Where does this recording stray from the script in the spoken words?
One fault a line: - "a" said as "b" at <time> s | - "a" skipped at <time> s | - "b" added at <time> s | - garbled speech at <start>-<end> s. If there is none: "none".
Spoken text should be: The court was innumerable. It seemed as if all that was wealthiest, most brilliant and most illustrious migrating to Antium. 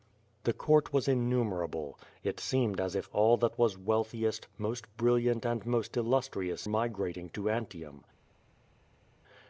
none